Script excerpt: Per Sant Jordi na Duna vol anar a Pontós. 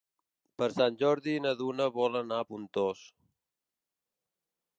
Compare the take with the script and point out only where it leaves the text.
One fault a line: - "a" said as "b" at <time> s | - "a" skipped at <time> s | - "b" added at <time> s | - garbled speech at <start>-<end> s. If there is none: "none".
none